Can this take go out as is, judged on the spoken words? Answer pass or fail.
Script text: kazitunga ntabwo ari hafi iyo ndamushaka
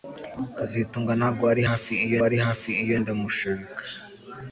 fail